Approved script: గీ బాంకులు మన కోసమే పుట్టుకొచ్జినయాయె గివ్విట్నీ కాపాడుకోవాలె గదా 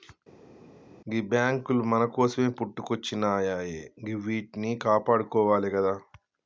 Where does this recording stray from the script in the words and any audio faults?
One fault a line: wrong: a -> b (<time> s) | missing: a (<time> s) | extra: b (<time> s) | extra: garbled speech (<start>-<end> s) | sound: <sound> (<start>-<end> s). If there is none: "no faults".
no faults